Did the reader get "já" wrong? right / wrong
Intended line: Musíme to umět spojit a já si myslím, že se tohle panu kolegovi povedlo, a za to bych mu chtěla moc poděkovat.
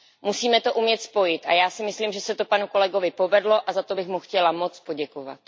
right